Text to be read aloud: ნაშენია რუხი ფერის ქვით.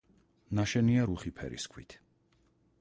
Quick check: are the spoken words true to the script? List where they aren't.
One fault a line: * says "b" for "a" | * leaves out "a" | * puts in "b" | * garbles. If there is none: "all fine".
all fine